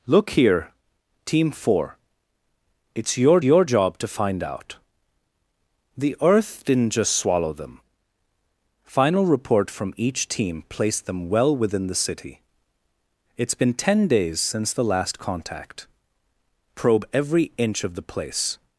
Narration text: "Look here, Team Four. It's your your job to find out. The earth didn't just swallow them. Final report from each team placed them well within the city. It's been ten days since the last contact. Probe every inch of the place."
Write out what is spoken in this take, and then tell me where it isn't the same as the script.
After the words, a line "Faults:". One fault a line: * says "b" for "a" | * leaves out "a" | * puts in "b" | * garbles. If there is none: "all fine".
"Look here, Team Four. It's your your job to find out. The earth didn't just swallow them. Final report from each team placed them well within the city. It's been ten days since the last contact. Probe every inch of the place."
Faults:
all fine